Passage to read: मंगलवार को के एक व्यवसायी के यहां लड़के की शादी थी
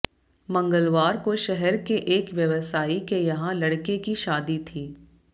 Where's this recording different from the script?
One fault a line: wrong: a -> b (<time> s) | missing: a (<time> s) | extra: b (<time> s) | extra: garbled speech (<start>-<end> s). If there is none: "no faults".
extra: शहर (1.4 s)